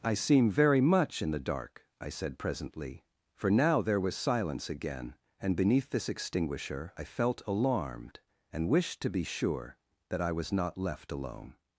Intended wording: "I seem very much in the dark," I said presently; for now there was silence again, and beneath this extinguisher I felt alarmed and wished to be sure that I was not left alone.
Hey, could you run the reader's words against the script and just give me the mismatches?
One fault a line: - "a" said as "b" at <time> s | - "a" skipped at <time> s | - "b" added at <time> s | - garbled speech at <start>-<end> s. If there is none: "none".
none